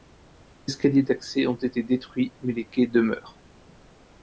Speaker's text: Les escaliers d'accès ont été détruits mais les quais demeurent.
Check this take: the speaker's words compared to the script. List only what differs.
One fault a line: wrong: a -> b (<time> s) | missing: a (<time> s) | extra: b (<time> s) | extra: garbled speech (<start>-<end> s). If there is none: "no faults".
no faults